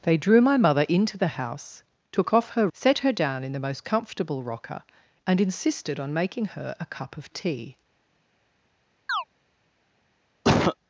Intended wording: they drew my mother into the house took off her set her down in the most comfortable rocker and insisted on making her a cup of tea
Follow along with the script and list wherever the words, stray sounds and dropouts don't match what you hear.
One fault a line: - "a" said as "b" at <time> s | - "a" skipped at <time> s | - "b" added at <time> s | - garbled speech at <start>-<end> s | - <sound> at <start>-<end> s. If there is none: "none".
- chirp at 9.1-9.2 s
- cough at 10.4-10.8 s